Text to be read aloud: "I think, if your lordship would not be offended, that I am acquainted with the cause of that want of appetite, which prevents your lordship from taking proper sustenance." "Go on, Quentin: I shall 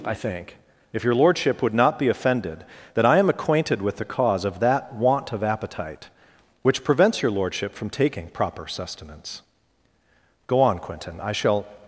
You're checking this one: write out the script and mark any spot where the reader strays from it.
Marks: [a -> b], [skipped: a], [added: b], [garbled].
"I think, if your lordship would not be offended, that I am acquainted with the cause of that want of appetite, which prevents your lordship from taking proper sustenance." "Go on, Quentin: I shall